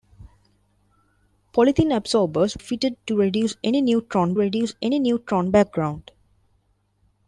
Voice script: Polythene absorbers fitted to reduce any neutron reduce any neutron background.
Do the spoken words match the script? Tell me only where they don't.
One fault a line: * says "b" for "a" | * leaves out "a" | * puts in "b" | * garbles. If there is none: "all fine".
all fine